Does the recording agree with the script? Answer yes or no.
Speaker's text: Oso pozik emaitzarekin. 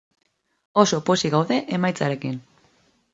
no